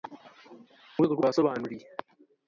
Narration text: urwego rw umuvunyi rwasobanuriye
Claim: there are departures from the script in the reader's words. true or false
true